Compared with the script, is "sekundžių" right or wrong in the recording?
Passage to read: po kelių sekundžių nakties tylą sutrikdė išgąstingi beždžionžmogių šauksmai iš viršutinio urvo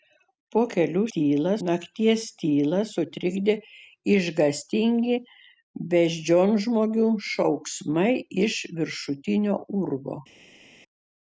wrong